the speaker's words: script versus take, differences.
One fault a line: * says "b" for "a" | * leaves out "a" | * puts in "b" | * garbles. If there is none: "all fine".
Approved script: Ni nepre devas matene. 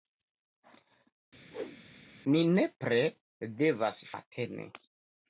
all fine